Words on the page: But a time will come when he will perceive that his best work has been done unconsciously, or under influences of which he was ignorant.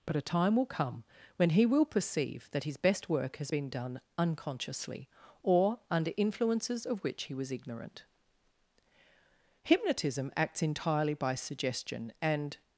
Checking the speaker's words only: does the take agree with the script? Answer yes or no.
no